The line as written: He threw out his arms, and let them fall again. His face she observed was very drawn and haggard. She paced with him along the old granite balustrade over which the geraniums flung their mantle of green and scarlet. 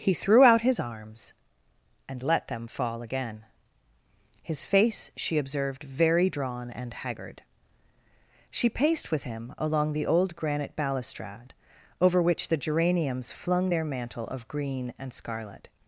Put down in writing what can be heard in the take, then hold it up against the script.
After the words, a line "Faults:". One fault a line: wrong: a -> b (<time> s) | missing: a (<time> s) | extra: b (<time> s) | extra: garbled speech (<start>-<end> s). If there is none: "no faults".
He threw out his arms, and let them fall again. His face she observed very drawn and haggard. She paced with him along the old granite balustrade over which the geraniums flung their mantle of green and scarlet.
Faults:
missing: was (5.8 s)